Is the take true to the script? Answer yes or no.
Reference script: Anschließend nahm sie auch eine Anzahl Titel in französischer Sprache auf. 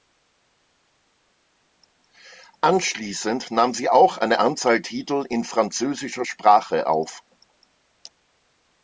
yes